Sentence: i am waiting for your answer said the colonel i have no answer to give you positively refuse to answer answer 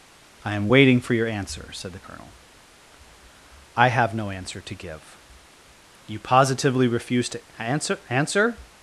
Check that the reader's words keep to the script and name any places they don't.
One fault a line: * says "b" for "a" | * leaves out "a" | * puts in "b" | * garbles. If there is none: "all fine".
all fine